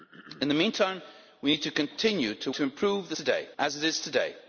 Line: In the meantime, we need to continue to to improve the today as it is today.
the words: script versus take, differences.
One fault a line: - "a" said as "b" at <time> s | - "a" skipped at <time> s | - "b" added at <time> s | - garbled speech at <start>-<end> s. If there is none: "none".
none